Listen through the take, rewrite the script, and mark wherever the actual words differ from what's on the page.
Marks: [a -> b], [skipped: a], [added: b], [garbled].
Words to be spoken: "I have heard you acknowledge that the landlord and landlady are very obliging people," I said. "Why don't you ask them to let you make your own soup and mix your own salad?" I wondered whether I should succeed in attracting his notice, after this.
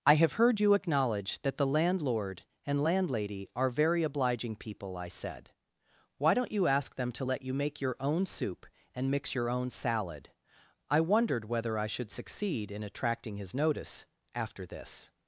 "I have heard you acknowledge that the landlord and landlady are very obliging people," I said. "Why don't you ask them to let you make your own soup and mix your own salad?" I wondered whether I should succeed in attracting his notice, after this.